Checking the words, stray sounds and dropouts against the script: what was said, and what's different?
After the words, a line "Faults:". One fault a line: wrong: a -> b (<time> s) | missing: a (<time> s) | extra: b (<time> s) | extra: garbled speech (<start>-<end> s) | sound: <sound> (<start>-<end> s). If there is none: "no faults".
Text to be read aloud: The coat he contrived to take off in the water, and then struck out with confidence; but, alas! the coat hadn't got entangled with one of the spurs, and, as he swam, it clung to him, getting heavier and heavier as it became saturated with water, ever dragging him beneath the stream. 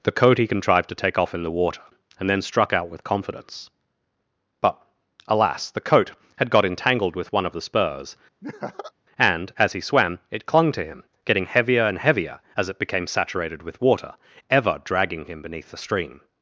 The coat he contrived to take off in the water, and then struck out with confidence; but, alas! the coat had got entangled with one of the spurs, and, as he swam, it clung to him, getting heavier and heavier as it became saturated with water, ever dragging him beneath the stream.
Faults:
wrong: hadn't -> had (6.4 s)
sound: laugh (8.4-8.9 s)